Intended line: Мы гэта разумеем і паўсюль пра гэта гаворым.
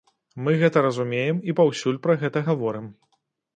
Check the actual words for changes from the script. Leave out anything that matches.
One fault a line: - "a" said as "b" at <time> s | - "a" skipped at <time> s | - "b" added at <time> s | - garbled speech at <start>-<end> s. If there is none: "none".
none